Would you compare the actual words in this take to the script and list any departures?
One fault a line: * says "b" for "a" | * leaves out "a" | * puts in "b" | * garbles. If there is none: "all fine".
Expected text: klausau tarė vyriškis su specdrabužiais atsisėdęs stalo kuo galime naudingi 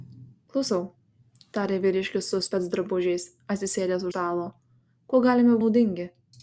all fine